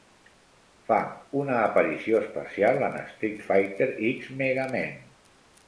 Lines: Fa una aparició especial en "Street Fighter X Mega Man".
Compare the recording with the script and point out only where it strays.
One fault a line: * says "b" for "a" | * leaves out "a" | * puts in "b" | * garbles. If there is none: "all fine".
all fine